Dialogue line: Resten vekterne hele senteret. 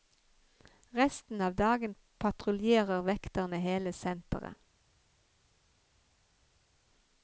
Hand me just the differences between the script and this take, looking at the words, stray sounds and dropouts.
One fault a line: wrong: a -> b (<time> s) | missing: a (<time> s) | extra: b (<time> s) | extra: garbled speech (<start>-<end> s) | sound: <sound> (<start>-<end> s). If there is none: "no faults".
extra: av dagen patruljerer (1.4 s)